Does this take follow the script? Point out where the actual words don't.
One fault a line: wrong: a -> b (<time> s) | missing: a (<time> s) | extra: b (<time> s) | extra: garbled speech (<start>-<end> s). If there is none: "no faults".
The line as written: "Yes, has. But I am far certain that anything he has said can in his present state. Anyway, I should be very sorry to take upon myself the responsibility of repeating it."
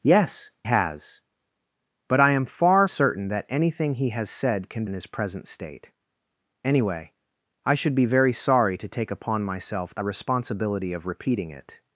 no faults